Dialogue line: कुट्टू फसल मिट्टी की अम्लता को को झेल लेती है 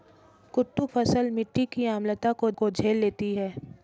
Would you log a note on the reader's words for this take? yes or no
no